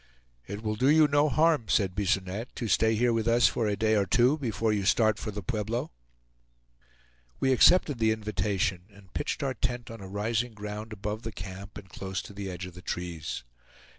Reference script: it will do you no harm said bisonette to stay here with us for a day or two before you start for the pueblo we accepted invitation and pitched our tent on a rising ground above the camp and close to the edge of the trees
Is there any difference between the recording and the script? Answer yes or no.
yes